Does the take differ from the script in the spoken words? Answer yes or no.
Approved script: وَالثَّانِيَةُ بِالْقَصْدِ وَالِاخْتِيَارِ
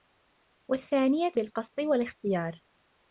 no